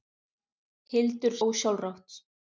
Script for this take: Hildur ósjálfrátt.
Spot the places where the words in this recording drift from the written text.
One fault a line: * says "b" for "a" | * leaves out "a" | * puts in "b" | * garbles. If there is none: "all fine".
all fine